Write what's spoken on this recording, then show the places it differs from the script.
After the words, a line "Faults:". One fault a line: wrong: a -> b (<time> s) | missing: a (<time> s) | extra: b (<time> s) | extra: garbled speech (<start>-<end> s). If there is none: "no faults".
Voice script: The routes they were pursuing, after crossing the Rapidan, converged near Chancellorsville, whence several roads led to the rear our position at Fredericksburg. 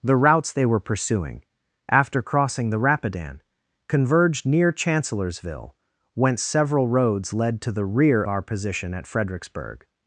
The routes they were pursuing, after crossing the Rapidan, converged near Chancellorsville, whence several roads led to the rear our position at Fredericksburg.
Faults:
no faults